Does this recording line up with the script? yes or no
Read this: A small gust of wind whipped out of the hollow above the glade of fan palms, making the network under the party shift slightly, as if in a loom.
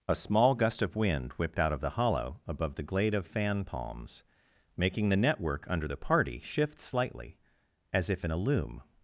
yes